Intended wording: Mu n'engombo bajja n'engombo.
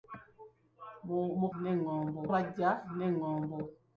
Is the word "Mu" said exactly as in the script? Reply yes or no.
yes